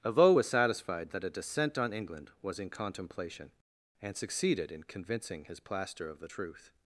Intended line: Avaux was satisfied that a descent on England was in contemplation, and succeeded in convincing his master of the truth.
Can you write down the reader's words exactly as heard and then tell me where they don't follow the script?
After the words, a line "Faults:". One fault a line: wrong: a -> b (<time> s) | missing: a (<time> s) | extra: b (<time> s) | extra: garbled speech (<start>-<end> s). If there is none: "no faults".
Avaux was satisfied that a descent on England was in contemplation, and succeeded in convincing his plaster of the truth.
Faults:
wrong: master -> plaster (5.6 s)